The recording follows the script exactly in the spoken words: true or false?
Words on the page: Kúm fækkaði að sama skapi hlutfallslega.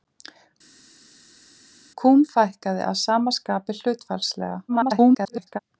false